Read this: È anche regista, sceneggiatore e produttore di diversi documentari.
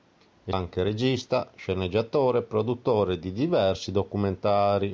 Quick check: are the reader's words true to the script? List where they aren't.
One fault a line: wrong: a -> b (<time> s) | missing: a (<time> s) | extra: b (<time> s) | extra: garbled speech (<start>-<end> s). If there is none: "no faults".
no faults